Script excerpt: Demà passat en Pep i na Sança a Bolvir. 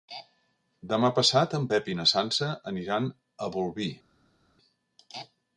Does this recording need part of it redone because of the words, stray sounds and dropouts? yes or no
yes